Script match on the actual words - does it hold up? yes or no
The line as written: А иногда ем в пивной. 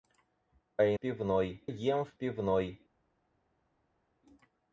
no